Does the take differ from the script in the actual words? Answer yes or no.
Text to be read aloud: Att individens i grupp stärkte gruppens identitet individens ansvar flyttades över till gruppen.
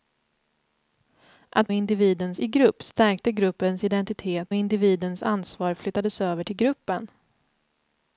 no